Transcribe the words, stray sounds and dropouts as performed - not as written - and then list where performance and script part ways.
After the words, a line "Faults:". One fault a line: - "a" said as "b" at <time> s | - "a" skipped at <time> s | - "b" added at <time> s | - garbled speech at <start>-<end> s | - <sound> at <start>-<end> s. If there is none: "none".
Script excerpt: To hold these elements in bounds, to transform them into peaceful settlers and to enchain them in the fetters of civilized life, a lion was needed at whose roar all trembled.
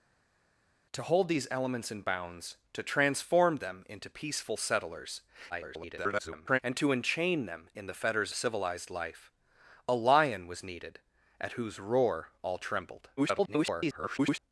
To hold these elements in bounds, to transform them into peaceful settlers [garbled] and to enchain them in the fetters civilized life, a lion was needed at whose roar all trembled. [garbled]
Faults:
- garbled speech at 5.5-6.6 s
- "of" skipped at 8.3 s
- garbled speech at 13.2-14.4 s